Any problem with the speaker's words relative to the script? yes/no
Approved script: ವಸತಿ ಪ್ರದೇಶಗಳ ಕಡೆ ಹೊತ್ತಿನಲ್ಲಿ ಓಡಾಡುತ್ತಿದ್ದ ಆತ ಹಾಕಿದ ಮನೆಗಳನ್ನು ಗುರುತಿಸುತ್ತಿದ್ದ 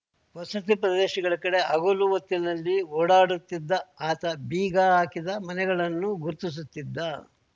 yes